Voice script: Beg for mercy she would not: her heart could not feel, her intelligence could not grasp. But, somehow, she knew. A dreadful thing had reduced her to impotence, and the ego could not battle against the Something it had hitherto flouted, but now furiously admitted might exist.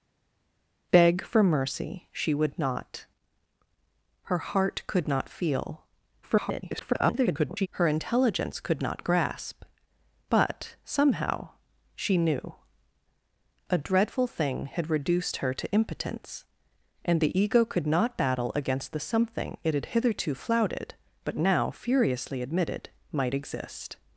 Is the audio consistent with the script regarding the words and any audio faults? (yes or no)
no